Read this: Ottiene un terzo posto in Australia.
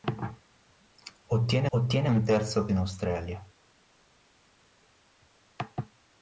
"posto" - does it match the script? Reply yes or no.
no